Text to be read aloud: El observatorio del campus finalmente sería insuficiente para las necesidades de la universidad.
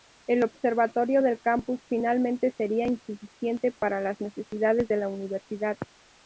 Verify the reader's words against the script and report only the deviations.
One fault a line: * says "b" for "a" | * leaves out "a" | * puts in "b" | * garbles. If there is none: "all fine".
all fine